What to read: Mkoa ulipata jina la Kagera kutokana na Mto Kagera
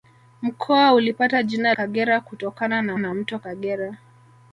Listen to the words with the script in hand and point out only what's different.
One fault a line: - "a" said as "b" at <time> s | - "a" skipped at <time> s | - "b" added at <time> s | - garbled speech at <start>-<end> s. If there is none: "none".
- "la" skipped at 1.7 s
- "na" added at 3.0 s